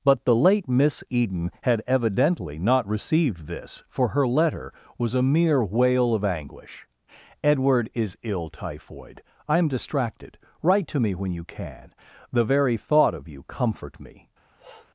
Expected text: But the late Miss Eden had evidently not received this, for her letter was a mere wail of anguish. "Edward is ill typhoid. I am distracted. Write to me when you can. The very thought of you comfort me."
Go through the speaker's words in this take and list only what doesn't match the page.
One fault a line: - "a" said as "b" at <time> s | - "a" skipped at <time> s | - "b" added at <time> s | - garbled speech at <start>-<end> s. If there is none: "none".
none